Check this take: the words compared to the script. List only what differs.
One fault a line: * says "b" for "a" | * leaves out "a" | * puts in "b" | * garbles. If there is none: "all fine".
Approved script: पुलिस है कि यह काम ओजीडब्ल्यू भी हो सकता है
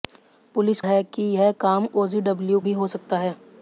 all fine